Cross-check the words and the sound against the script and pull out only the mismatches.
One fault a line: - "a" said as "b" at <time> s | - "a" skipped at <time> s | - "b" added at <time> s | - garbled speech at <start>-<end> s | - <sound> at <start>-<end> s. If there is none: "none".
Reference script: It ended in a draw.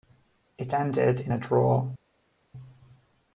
none